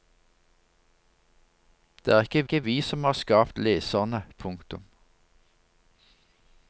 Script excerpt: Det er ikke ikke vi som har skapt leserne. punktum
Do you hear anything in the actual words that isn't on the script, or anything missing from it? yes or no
no